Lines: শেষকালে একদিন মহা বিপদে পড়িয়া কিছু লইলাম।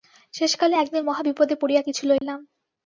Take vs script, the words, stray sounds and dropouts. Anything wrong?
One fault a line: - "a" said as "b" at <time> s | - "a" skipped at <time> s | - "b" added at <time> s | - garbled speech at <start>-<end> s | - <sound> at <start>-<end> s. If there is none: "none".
- dropout at 2.2-2.2 s